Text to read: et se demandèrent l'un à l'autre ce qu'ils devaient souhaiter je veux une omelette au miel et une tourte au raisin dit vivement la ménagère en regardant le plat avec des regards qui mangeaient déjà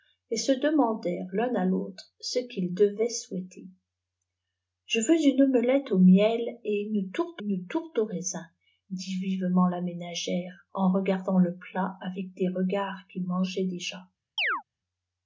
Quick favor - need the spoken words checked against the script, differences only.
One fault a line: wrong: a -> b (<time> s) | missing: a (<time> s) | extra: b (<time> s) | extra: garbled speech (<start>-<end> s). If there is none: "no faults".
extra: une tourte (7.4 s)